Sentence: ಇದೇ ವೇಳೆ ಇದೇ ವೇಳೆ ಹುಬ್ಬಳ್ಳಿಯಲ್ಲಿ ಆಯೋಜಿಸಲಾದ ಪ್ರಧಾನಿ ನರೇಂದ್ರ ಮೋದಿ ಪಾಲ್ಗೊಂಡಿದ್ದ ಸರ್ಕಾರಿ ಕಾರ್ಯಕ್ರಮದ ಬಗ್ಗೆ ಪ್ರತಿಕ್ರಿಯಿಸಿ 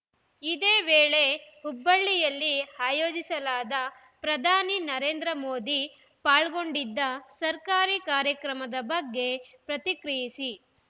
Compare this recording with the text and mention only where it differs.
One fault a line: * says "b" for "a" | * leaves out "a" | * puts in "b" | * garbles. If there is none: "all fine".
* leaves out "ಇದೇ ವೇಳೆ"